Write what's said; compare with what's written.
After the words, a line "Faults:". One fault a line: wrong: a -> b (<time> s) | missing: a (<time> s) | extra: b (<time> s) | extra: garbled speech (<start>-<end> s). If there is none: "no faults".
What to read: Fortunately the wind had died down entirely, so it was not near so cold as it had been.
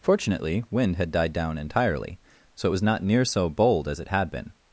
Fortunately wind had died down entirely, so it was not near so bold as it had been.
Faults:
missing: the (0.6 s)
wrong: cold -> bold (3.5 s)